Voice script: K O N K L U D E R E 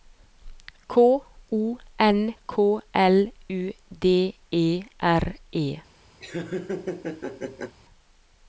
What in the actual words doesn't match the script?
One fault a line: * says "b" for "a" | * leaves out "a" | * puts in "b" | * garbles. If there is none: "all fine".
all fine